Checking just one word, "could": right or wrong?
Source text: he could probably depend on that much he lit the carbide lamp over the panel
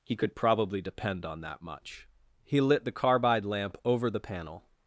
right